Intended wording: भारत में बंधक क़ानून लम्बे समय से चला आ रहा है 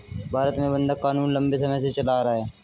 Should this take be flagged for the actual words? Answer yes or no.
no